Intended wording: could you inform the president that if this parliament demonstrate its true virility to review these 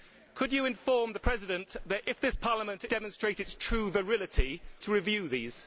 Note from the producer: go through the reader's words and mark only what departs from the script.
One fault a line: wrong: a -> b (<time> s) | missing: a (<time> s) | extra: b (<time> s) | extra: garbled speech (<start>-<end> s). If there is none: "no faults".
no faults